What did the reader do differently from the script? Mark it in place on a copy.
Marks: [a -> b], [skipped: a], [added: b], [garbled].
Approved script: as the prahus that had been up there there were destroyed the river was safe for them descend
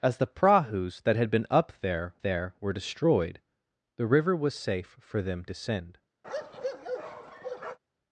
as the prahus that had been up there there were destroyed the river was safe for them descend